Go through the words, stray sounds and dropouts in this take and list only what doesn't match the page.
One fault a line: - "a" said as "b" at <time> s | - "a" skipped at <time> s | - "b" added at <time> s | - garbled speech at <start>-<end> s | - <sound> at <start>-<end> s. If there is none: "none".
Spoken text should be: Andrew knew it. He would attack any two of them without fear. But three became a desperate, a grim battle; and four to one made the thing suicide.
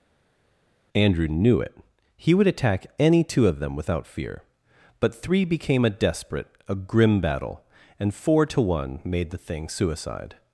none